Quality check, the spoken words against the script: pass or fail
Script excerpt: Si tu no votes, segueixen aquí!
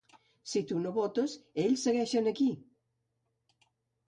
fail